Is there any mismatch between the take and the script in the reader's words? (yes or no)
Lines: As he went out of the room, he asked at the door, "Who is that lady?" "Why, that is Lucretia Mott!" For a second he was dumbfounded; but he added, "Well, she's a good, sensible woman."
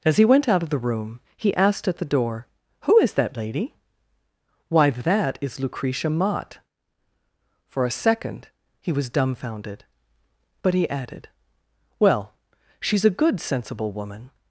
no